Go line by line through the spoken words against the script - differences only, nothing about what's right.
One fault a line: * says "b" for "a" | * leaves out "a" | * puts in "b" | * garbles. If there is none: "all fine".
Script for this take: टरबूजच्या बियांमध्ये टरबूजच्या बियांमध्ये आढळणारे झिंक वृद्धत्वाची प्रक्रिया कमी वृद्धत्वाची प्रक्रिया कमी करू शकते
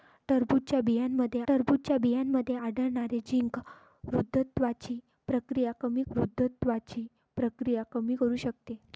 all fine